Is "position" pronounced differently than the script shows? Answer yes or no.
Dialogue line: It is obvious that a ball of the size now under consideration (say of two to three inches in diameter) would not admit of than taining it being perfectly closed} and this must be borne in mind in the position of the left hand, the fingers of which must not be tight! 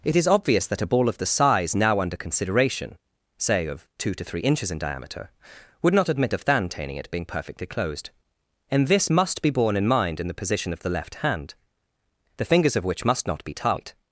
no